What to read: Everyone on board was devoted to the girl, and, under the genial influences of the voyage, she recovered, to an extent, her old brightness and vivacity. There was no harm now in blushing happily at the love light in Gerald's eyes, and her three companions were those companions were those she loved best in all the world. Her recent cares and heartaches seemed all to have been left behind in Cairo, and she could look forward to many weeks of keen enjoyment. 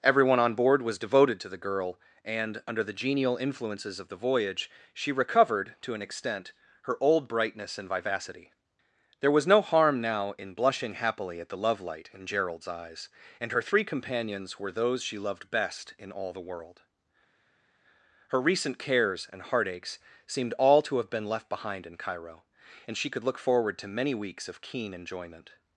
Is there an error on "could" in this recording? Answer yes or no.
no